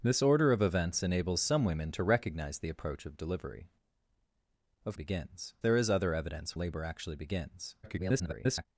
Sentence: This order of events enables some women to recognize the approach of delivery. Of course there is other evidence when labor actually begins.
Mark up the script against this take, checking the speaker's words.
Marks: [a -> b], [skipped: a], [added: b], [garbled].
This order of events enables some women to recognize the approach of delivery. Of [course -> begins] there is other evidence [skipped: when] labor actually begins. [garbled]